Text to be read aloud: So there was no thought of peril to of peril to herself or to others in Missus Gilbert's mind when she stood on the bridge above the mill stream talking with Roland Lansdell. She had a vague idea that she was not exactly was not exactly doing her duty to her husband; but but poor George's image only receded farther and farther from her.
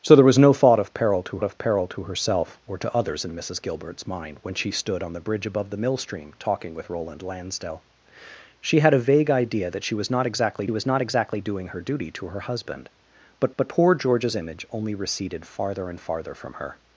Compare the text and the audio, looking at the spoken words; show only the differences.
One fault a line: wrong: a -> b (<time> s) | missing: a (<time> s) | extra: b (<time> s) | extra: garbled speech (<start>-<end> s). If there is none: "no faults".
no faults